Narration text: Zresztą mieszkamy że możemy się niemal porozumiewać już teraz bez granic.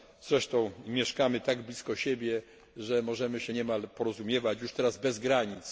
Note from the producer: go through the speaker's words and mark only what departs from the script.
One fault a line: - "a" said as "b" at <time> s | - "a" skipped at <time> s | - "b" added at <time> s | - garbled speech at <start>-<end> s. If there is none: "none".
- "tak blisko siebie" added at 1.4 s